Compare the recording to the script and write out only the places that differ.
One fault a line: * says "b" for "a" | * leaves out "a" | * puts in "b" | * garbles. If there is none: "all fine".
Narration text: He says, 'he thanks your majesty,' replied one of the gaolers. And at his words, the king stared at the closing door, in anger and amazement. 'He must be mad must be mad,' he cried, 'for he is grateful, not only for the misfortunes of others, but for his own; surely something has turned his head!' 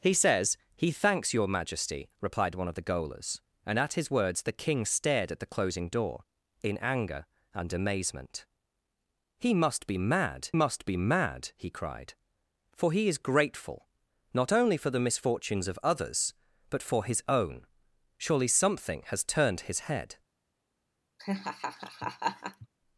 all fine